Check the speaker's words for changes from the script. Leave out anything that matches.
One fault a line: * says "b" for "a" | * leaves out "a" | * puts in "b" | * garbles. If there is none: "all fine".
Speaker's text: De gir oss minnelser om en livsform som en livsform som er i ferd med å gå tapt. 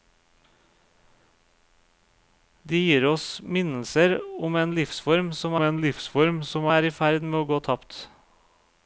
all fine